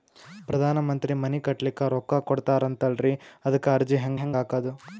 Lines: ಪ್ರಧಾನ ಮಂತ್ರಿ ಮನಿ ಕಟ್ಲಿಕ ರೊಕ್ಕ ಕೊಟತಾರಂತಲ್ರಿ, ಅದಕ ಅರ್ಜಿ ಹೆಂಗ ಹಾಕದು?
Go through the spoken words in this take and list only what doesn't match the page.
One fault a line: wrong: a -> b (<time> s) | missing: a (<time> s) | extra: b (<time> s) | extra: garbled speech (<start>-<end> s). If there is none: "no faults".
extra: ಹೆಂಗ (4.1 s)